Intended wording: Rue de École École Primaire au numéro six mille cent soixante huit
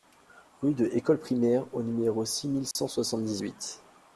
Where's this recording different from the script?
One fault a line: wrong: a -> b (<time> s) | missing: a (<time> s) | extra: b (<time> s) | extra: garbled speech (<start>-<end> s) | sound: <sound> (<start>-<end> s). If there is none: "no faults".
missing: École (1.2 s)
sound: dropout (2.7-2.8 s)
extra: dix (3.2 s)